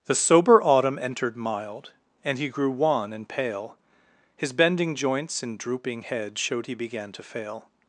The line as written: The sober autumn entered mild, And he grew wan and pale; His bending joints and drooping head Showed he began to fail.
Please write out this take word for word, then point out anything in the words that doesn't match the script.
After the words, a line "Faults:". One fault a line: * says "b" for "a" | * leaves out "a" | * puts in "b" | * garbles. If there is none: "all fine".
The sober autumn entered mild, And he grew wan and pale; His bending joints and drooping head Showed he began to fail.
Faults:
all fine